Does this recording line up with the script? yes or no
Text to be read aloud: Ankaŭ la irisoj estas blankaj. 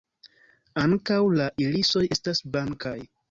yes